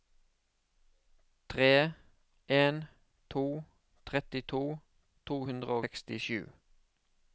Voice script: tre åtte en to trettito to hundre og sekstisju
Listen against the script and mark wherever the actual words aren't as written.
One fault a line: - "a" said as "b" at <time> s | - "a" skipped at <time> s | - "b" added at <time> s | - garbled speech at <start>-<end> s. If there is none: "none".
- "åtte" skipped at 1.9 s
- "og" skipped at 5.8 s